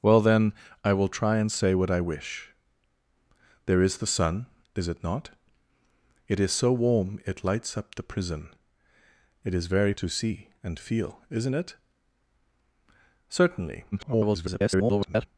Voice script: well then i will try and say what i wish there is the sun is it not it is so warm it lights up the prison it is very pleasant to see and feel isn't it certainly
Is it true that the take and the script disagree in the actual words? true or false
true